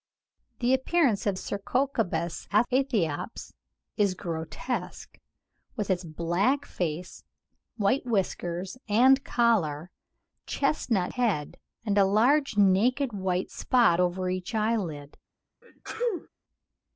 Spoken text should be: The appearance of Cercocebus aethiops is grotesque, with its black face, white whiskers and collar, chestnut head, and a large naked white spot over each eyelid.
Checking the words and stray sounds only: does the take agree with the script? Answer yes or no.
no